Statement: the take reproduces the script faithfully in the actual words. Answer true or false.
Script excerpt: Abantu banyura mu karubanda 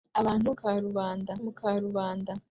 false